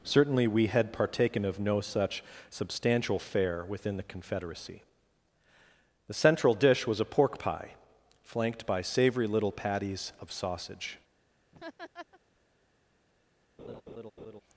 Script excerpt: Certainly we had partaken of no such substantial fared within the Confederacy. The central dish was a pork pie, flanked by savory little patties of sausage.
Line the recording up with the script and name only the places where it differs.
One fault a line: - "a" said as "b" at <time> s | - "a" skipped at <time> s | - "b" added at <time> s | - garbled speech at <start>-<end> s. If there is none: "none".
- "fared" said as "fare" at 3.2 s